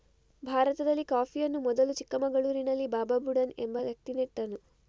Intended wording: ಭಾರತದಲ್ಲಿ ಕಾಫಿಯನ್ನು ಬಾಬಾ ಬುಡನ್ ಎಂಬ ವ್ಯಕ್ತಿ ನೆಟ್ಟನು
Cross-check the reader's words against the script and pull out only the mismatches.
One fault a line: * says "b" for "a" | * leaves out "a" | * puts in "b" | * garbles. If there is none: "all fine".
* puts in "ಮೊದಲು ಚಿಕ್ಕಮಗಳೂರಿನಲ್ಲಿ"